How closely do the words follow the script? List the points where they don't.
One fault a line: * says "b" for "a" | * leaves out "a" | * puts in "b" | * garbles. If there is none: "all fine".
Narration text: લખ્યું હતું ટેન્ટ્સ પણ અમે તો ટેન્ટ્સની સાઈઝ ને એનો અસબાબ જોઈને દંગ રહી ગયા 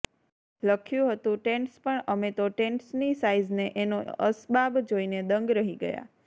all fine